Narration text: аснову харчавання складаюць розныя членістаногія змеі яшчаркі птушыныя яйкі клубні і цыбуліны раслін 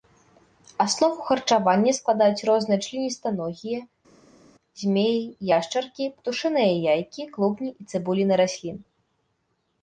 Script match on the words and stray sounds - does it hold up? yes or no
yes